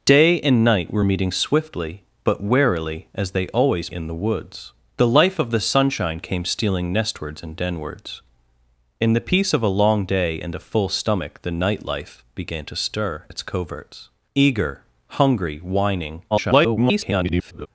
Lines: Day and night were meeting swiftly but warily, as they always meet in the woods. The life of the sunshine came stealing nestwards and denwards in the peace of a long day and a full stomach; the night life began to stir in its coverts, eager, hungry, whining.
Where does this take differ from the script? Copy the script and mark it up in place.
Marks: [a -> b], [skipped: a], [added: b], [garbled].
Day and night were meeting swiftly but warily, as they always [skipped: meet] in the woods. The life of the sunshine came stealing nestwards and denwards in the peace of a long day and a full stomach; the night life began to stir [skipped: in] its coverts, eager, hungry, whining. [garbled]